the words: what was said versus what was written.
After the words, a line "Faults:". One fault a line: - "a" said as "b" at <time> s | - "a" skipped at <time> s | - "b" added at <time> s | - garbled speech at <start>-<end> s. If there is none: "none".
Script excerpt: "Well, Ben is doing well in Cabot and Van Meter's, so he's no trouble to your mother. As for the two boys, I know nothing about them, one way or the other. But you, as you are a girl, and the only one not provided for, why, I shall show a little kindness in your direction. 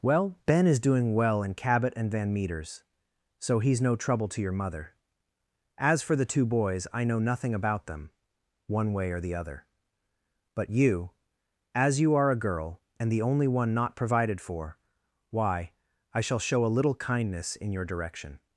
"Well, Ben is doing well in Cabot and Van Meter's, so he's no trouble to your mother. As for the two boys, I know nothing about them, one way or the other. But you, as you are a girl, and the only one not provided for, why, I shall show a little kindness in your direction.
Faults:
none